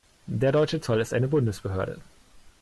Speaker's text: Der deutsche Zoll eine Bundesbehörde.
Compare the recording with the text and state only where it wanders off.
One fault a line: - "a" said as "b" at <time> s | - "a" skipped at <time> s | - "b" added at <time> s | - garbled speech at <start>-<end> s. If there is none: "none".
- "ist" added at 1.0 s